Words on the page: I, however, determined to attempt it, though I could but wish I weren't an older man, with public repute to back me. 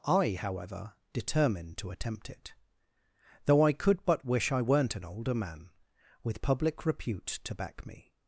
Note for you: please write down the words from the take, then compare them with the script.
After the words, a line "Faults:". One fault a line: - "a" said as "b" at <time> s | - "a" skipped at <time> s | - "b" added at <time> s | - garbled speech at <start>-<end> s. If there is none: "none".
I, however, determined to attempt it, though I could but wish I weren't an older man, with public repute to back me.
Faults:
none